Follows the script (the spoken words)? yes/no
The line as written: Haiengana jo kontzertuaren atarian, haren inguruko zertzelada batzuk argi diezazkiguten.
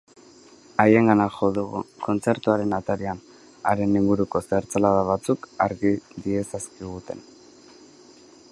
no